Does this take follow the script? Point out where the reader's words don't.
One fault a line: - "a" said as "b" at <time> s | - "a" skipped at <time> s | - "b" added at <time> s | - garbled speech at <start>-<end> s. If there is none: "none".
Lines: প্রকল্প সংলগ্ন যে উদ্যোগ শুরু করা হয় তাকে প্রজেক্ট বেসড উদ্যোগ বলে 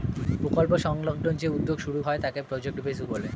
- "করা" skipped at 2.0 s
- "উদ্যোগ" skipped at 3.0 s